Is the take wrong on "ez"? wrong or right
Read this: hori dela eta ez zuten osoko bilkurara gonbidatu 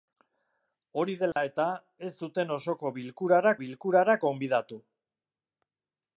right